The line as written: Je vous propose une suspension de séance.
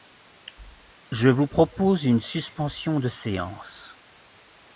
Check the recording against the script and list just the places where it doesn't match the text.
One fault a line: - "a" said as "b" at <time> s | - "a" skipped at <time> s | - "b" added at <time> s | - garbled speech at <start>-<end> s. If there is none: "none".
none